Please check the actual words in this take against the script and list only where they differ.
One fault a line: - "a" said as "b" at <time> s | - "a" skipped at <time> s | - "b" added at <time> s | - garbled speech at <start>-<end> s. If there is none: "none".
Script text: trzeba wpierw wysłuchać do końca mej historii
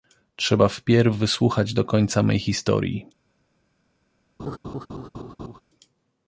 none